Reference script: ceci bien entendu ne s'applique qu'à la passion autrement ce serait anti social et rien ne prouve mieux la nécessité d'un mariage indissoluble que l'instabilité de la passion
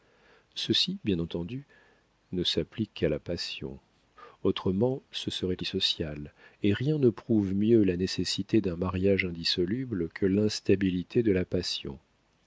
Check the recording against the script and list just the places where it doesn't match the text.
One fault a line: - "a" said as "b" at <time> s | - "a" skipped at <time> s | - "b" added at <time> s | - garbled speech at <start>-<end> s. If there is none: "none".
- "anti" skipped at 5.6 s